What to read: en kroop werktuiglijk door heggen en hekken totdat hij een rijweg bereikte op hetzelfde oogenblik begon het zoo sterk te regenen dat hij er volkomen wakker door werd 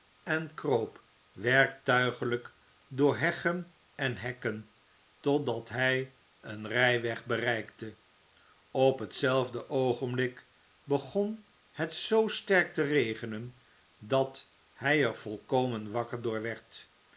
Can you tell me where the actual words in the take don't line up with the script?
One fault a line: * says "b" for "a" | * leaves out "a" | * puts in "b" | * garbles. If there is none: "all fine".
all fine